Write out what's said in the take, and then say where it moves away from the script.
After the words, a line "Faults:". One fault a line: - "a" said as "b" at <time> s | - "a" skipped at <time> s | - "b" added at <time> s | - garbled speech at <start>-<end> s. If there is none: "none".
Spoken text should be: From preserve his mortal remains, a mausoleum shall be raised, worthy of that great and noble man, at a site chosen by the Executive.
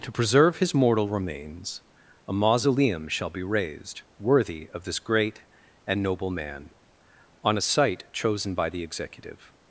To preserve his mortal remains, a mausoleum shall be raised, worthy of this great and noble man, on a site chosen by the Executive.
Faults:
- "From" said as "To" at 0.0 s
- "that" said as "this" at 4.8 s
- "at" said as "on" at 7.4 s